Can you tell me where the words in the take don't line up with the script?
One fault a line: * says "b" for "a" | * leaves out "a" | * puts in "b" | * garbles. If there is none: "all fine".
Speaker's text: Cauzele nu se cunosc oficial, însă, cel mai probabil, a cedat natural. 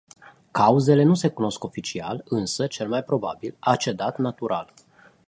all fine